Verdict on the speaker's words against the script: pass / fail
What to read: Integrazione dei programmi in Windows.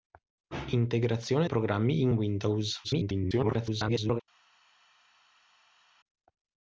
fail